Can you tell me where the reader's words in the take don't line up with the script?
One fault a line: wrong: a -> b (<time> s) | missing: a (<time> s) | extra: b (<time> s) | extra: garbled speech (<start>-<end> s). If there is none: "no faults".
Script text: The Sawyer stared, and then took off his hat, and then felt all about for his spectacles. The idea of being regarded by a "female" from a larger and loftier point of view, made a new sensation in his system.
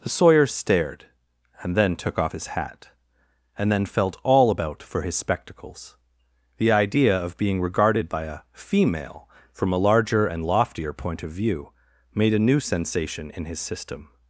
no faults